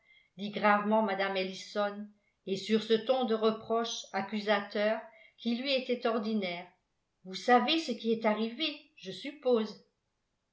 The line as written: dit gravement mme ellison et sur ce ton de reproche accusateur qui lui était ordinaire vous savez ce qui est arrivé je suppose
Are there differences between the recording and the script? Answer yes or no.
no